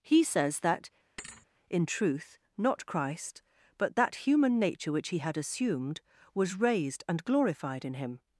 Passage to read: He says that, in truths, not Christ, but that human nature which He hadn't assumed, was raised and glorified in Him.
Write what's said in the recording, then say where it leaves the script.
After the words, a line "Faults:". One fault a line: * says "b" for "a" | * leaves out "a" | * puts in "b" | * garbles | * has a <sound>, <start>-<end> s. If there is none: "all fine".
He says that, in truth, not Christ, but that human nature which He had assumed, was raised and glorified in Him.
Faults:
* has a thud, 1.2-1.5 s
* says "truth" for "truths"
* says "had" for "hadn't"